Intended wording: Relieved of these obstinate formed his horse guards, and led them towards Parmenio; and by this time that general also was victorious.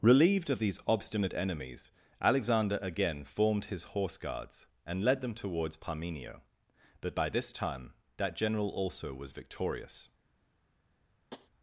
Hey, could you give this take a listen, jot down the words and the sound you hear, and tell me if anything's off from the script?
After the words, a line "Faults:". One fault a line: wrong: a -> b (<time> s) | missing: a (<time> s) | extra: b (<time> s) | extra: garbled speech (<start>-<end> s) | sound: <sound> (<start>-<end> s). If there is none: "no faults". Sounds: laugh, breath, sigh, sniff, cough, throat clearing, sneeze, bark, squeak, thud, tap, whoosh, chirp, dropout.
Relieved of these obstinate enemies, Alexander again formed his horse guards, and led them towards Parmenio; but by this time that general also was victorious.
Faults:
extra: enemies Alexander again (1.3 s)
wrong: and -> but (7.0 s)
sound: tap (11.3-11.5 s)